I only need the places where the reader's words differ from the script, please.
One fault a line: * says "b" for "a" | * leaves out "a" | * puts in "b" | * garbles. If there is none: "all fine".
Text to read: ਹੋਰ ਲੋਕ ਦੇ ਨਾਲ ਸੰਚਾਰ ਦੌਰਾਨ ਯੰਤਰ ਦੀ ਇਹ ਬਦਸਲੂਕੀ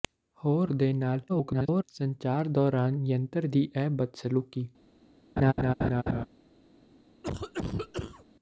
* leaves out "ਲੋਕ"
* garbles